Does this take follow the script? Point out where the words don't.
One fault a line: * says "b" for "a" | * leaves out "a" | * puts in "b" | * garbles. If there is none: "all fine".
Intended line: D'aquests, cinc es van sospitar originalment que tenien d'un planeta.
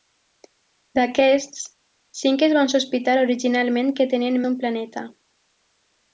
all fine